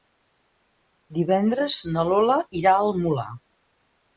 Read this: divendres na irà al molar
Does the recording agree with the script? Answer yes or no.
no